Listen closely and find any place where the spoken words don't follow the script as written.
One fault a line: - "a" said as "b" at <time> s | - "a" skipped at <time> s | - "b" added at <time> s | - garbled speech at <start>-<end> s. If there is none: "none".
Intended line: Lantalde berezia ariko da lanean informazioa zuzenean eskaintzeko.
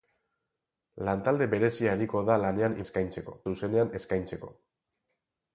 - "informazioa" said as "eskaintzeko" at 2.9 s